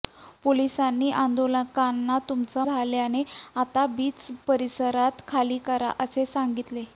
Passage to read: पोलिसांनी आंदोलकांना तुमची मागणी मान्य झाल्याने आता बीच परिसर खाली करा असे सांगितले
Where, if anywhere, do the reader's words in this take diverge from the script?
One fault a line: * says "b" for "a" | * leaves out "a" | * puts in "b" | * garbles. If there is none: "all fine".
* leaves out "मागणी मान्य"